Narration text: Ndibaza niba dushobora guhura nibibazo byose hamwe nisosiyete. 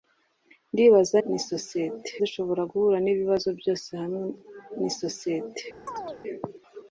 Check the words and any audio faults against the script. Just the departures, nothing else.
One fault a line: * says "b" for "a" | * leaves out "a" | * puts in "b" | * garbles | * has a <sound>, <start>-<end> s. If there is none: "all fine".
* says "nisosiyete" for "niba"
* has a chirp, 5.9-6.2 s